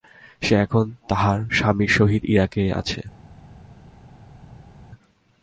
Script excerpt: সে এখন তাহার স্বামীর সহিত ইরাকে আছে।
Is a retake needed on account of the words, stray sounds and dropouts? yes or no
no